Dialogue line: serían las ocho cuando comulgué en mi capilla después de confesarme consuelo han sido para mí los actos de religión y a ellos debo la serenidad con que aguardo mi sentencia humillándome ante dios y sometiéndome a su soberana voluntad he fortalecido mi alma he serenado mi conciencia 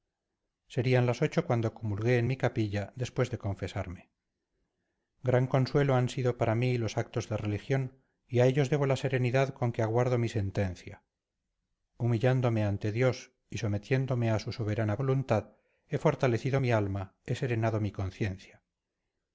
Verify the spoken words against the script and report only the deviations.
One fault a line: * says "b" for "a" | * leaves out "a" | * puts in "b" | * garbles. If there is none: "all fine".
* puts in "gran"